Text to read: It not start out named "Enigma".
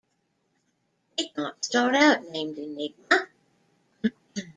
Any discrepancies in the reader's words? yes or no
no